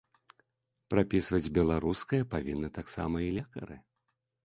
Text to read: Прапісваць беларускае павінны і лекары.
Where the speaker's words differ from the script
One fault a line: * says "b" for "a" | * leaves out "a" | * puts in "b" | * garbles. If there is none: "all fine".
* puts in "таксама"